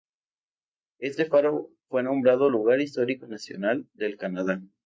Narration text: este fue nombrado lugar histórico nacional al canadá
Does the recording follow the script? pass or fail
fail